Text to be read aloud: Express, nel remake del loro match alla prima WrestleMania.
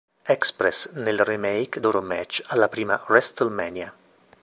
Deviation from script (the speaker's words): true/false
true